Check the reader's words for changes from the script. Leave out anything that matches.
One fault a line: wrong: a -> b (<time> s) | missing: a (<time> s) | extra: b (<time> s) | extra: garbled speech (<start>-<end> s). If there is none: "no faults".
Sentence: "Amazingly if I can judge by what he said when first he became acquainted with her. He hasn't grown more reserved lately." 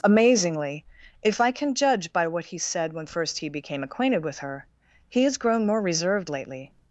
wrong: hasn't -> has (5.2 s)